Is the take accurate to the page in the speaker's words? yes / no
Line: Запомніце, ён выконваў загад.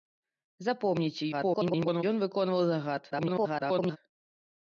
no